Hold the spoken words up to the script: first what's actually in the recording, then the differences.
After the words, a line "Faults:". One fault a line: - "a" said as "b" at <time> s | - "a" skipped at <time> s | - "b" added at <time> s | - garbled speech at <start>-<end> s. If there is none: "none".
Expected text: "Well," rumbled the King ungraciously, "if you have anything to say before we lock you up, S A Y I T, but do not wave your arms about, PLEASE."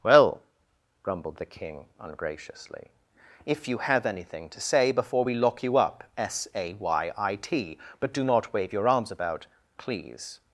"Well," grumbled the King ungraciously, "if you have anything to say before we lock you up, S A Y I T, but do not wave your arms about, PLEASE."
Faults:
- "rumbled" said as "grumbled" at 1.0 s